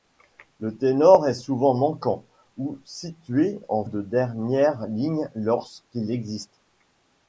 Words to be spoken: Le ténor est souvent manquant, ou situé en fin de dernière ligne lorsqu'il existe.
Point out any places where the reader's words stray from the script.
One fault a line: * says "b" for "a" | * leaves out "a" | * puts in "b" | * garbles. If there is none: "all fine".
* leaves out "fin"